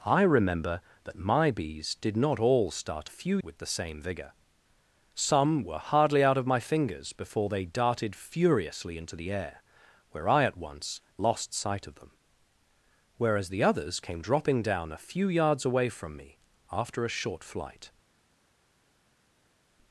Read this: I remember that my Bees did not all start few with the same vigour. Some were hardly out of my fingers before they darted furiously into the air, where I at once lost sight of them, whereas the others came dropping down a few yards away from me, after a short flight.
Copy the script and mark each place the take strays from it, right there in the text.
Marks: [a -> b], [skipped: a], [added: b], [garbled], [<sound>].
I remember that my Bees did not all start few with the same vigour. Some were hardly out of my fingers before they darted furiously into the air, where I at once lost sight of them, whereas the others came dropping down a few yards away from me, after a short flight.